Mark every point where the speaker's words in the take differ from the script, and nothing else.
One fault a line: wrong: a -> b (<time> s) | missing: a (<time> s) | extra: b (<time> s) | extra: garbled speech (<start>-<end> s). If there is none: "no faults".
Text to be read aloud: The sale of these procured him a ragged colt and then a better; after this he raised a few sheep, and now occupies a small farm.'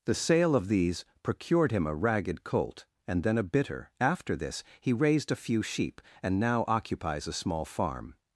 wrong: better -> bitter (3.4 s)